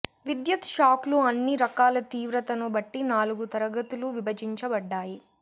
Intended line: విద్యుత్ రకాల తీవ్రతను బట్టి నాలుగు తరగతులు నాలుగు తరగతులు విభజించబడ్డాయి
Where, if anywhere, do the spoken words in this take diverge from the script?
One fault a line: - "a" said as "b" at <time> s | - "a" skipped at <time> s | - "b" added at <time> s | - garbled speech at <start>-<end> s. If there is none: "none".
- "షాక్లు అన్ని" added at 0.7 s
- "నాలుగు తరగతులు" skipped at 4.1 s